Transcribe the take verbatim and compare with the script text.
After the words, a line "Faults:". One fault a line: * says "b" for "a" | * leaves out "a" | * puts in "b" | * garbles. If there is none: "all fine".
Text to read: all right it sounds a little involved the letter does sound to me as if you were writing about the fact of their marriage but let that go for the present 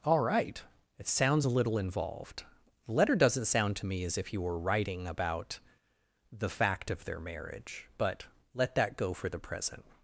all right it sounds a little involved the letter doesn't sound to me as if you were writing about the fact of their marriage but let that go for the present
Faults:
* says "doesn't" for "does"